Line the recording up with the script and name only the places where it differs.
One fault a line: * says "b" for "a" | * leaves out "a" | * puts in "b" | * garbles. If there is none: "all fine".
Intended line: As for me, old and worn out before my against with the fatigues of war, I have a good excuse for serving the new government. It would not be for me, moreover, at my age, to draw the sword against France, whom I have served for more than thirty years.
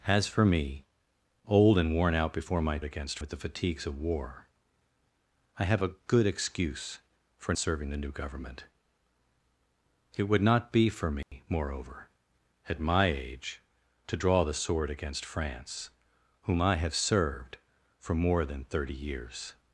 all fine